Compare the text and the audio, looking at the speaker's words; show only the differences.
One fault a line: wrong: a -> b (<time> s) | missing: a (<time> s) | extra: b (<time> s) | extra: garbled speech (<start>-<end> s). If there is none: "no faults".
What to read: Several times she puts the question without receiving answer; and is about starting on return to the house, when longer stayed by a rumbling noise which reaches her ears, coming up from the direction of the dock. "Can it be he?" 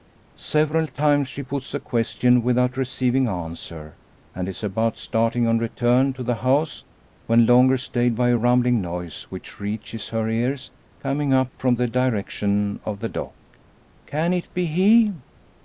no faults